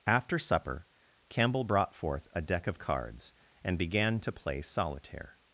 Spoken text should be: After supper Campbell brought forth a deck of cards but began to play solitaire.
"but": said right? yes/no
no